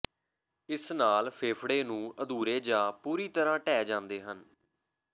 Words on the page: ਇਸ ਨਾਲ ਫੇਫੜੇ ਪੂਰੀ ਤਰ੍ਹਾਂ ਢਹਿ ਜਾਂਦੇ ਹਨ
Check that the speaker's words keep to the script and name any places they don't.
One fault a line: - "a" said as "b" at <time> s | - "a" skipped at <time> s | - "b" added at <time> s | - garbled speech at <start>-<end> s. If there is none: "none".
- "ਨੂੰ ਅਧੂਰੇ ਜਾਂ" added at 1.8 s